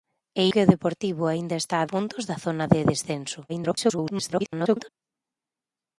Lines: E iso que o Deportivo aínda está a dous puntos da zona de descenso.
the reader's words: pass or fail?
fail